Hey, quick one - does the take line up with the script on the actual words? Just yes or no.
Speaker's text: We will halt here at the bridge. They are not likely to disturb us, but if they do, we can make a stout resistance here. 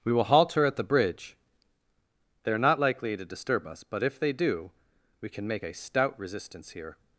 no